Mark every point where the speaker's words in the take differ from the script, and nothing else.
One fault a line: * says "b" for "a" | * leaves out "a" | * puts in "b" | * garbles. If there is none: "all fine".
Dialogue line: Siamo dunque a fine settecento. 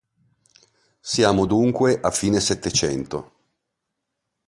all fine